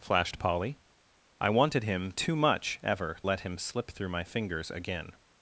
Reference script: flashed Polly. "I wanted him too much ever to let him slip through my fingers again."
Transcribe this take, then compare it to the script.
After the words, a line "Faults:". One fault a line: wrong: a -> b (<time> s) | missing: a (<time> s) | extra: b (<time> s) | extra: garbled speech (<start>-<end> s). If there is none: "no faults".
flashed Polly. "I wanted him too much ever let him slip through my fingers again."
Faults:
missing: to (3.2 s)